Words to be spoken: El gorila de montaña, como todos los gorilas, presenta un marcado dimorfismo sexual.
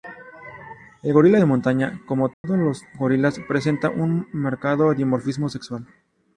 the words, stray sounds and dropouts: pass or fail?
fail